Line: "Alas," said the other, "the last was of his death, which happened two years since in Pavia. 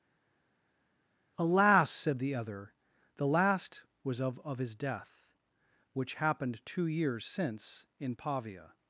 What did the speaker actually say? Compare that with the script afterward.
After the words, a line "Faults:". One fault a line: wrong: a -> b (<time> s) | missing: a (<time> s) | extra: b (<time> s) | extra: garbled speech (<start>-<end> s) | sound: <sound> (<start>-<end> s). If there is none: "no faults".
"Alas," said the other, "the last was of of his death, which happened two years since in Pavia.
Faults:
extra: of (4.5 s)